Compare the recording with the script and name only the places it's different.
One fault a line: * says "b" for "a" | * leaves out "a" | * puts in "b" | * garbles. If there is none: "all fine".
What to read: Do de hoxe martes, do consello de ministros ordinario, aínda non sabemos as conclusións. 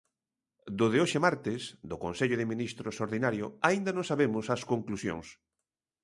all fine